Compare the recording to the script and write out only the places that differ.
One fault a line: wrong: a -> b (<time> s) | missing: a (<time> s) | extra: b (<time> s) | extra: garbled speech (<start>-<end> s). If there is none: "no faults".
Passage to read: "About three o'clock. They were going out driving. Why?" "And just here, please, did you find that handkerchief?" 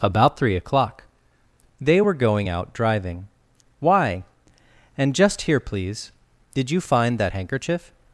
no faults